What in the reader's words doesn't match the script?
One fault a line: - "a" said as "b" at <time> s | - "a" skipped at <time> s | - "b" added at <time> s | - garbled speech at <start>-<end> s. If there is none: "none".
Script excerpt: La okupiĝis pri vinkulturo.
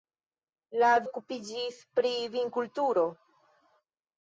none